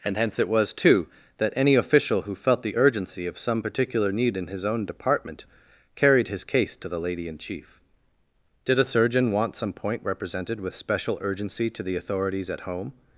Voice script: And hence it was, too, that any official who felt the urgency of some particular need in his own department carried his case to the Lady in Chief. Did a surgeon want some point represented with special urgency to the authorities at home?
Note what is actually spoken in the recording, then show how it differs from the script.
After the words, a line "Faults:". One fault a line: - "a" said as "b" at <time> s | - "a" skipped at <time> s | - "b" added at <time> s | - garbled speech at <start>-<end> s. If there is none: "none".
And hence it was, too, that any official who felt the urgency of some particular need in his own department carried his case to the Lady in Chief. Did a surgeon want some point represented with special urgency to the authorities at home?
Faults:
none